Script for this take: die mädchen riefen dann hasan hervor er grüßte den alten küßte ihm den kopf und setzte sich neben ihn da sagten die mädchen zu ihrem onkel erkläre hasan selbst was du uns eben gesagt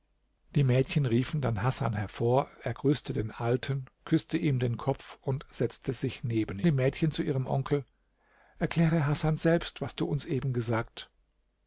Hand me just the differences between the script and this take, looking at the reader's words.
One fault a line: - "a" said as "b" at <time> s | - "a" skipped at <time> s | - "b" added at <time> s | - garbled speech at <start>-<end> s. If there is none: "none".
- "ihn da sagten" skipped at 6.6 s